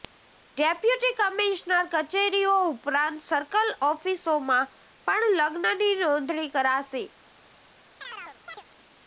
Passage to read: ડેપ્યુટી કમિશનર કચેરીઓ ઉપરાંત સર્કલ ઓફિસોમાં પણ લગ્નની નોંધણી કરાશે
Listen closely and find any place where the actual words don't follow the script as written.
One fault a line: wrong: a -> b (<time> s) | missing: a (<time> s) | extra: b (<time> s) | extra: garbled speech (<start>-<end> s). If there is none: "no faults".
no faults